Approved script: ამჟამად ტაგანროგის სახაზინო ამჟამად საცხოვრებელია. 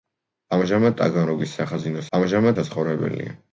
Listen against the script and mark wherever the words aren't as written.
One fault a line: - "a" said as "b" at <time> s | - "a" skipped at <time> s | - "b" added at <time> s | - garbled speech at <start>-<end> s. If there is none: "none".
none